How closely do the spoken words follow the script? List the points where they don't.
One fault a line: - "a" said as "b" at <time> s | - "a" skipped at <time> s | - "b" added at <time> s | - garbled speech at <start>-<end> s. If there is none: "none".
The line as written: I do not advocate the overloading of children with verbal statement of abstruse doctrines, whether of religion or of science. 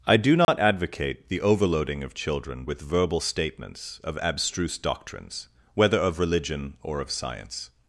- "statement" said as "statements" at 3.2 s